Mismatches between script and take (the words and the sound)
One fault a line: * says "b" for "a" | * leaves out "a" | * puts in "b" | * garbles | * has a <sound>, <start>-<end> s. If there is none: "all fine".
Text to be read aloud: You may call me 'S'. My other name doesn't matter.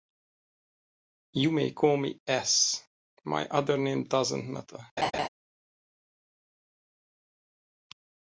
* has a laugh, 5.0-5.3 s